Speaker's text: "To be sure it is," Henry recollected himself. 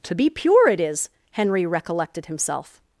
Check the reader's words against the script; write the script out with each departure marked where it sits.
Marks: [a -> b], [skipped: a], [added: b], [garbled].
"To be [sure -> pure] it is," Henry recollected himself.